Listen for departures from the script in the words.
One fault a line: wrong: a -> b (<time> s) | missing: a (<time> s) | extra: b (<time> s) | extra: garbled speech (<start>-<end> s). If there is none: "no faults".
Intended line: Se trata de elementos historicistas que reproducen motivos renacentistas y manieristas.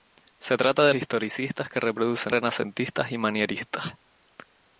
missing: elementos (0.9 s)
missing: motivos (2.3 s)